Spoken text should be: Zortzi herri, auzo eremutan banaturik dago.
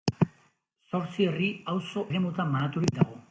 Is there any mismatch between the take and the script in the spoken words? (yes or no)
no